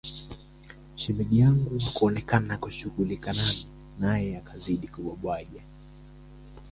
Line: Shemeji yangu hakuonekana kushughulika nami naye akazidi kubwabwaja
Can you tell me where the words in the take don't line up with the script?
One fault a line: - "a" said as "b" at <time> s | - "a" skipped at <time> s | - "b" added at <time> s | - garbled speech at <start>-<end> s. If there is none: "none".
none